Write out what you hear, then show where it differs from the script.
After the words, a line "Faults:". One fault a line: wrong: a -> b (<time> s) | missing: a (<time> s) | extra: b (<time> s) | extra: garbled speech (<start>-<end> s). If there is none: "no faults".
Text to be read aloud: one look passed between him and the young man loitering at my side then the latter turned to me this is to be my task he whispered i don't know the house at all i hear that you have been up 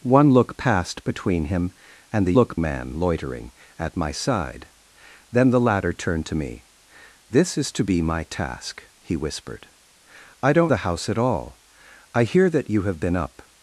one look passed between him and the look man loitering at my side then the latter turned to me this is to be my task he whispered i don't the house at all i hear that you have been up
Faults:
wrong: young -> look (2.3 s)
missing: know (10.7 s)